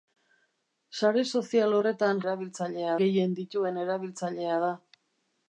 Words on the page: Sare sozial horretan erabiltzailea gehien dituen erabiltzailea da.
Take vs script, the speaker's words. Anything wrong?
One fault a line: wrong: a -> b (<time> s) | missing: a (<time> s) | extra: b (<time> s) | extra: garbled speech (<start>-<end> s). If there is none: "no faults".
no faults